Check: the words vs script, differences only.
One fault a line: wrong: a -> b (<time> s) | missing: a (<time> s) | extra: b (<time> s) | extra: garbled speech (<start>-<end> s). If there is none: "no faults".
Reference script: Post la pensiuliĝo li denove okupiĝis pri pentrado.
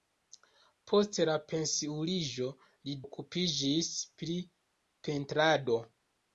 missing: denove (3.0 s)